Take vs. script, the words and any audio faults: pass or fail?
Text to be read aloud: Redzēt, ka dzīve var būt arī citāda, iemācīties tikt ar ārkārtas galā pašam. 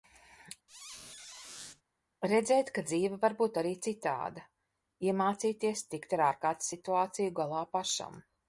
fail